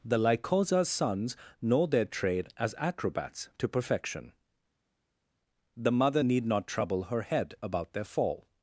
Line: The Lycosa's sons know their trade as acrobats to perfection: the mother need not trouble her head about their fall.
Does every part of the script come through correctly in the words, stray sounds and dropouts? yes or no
yes